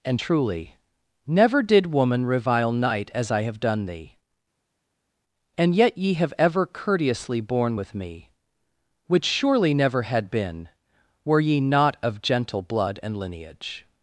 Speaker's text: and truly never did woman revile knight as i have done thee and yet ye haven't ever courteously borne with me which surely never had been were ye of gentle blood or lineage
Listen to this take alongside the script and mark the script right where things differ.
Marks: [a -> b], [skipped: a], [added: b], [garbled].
and truly never did woman revile knight as i have done thee and yet ye [haven't -> have] ever courteously borne with me which surely never had been were ye [added: not] of gentle blood [or -> and] lineage